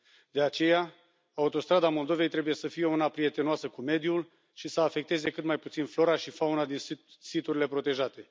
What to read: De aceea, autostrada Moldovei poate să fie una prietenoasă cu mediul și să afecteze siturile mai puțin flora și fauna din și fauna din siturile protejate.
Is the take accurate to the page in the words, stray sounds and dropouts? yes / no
no